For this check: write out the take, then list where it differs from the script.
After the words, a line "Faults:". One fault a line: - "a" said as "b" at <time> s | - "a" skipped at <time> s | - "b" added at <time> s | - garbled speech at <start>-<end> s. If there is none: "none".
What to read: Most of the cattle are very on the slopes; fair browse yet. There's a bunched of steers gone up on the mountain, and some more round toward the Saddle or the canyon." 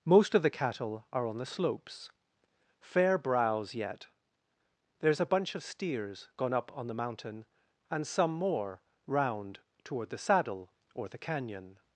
Most of the cattle are on the slopes; fair browse yet. There's a bunch of steers gone up on the mountain, and some more round toward the Saddle or the canyon."
Faults:
- "very" skipped at 1.3 s
- "bunched" said as "bunch" at 5.3 s